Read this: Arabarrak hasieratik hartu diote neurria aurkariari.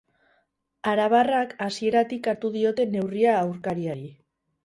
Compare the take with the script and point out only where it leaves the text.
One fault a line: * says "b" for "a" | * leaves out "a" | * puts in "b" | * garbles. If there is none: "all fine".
all fine